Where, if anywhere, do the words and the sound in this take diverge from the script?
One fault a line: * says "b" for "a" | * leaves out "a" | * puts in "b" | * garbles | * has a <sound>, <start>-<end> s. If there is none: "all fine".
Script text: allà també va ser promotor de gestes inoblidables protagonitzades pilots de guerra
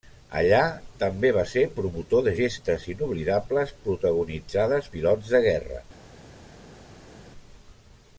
all fine